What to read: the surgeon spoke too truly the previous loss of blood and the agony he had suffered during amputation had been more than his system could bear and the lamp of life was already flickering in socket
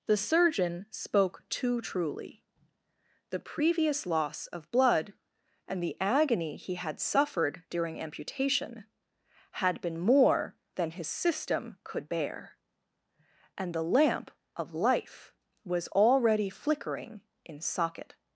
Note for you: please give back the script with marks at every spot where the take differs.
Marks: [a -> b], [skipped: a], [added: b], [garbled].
the surgeon spoke too truly the previous loss of blood and the agony he had suffered during amputation had been more than his system could bear and the lamp of life was already flickering in socket